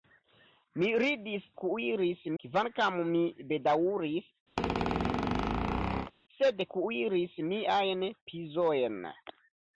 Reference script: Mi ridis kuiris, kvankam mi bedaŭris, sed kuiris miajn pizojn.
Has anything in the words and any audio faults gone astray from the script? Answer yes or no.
yes